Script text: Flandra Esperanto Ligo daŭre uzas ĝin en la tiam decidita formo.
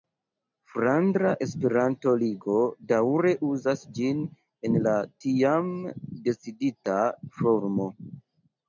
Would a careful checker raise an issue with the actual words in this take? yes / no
no